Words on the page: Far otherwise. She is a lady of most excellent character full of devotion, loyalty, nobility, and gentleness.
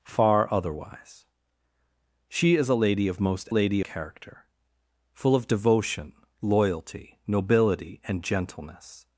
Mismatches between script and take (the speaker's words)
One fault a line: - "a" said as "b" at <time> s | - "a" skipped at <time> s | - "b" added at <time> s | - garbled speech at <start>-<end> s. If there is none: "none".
- "excellent" said as "lady" at 3.5 s